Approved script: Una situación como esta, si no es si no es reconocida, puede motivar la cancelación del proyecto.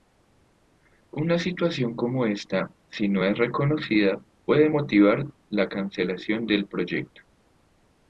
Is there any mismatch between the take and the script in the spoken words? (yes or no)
yes